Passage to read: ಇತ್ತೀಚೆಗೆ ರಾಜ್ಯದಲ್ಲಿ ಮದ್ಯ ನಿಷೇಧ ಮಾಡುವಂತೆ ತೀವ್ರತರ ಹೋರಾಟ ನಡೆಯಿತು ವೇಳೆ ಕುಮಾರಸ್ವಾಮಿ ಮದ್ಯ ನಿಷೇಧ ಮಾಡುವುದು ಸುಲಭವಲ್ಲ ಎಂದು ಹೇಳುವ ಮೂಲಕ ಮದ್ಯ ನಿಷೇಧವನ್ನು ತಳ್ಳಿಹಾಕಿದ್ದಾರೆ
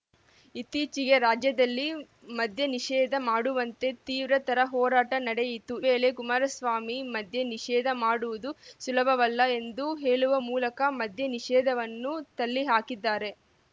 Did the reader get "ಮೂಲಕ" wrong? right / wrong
right